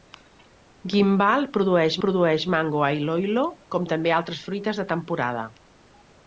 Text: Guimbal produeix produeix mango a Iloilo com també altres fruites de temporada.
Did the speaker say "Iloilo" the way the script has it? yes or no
yes